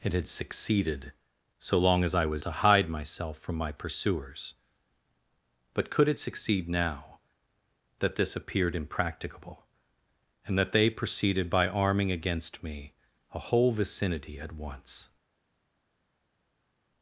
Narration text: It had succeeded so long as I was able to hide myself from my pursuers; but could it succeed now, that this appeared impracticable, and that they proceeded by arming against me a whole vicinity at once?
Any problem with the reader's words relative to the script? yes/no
yes